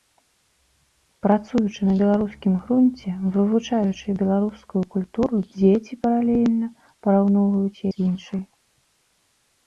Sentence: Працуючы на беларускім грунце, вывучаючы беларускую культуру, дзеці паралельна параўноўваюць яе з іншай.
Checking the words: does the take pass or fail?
fail